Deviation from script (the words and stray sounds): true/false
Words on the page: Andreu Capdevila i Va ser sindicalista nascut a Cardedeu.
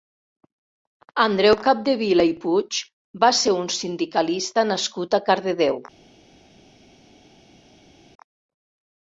true